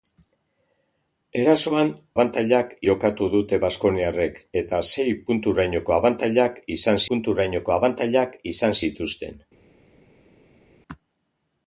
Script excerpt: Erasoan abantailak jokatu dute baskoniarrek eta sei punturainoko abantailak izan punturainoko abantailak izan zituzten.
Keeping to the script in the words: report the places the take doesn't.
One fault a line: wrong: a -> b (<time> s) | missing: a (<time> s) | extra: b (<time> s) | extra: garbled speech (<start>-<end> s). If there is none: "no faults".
no faults